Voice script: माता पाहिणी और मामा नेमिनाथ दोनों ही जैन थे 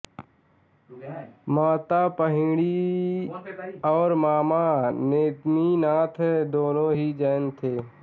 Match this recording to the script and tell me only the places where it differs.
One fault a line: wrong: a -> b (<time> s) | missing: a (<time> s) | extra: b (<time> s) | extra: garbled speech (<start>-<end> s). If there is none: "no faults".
no faults